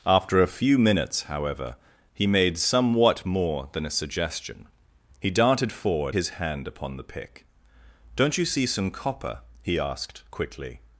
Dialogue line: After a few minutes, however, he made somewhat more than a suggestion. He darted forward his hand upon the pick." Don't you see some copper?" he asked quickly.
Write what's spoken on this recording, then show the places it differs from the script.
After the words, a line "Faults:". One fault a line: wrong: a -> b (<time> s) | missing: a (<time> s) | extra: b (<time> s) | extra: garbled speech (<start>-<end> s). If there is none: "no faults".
After a few minutes, however, he made somewhat more than a suggestion. He darted forward his hand upon the pick." Don't you see some copper?" he asked quickly.
Faults:
no faults